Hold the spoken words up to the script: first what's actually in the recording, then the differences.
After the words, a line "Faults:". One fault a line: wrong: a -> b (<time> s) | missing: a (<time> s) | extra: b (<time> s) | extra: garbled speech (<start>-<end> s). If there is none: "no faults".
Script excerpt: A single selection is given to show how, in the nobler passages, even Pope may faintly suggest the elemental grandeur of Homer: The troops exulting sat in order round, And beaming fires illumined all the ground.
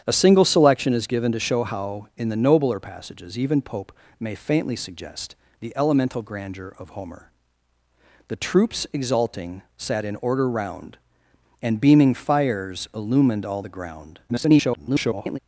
A single selection is given to show how, in the nobler passages, even Pope may faintly suggest the elemental grandeur of Homer: The troops exulting sat in order round, And beaming fires illumined all the ground. [garbled]
Faults:
extra: garbled speech (14.3-15.4 s)